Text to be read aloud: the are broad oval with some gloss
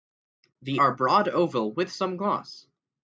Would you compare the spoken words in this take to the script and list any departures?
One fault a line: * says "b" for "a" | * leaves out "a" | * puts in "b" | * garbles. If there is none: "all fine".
all fine